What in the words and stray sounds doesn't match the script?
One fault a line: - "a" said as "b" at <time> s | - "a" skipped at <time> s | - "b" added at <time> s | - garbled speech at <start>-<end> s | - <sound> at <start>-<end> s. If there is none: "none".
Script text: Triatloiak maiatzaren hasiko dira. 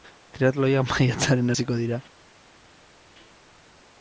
none